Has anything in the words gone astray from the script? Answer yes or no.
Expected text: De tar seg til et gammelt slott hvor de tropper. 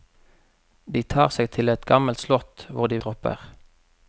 no